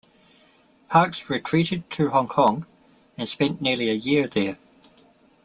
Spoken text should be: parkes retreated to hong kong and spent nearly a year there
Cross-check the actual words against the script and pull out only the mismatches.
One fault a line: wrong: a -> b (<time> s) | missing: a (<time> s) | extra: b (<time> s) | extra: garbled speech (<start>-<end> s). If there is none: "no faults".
no faults